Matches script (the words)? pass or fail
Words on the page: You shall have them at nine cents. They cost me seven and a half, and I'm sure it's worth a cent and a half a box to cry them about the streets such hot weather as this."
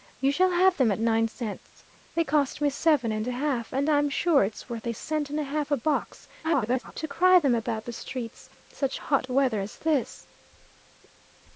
fail